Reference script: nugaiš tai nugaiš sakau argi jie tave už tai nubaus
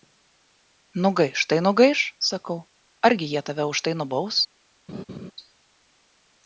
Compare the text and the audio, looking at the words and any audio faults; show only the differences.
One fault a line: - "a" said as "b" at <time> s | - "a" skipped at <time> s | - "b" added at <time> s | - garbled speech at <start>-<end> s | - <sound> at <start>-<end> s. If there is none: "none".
- laugh at 4.9-5.3 s